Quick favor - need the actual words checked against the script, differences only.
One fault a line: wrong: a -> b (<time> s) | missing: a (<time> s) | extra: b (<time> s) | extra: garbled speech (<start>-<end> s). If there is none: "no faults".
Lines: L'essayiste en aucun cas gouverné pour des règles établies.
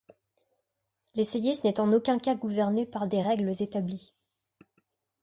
extra: n'est (1.6 s)
wrong: pour -> par (2.9 s)